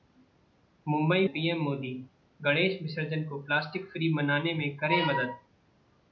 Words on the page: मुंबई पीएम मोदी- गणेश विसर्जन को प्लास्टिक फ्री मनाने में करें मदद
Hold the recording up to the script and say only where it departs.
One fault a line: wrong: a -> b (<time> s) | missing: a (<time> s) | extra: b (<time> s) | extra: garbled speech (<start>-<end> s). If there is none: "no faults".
no faults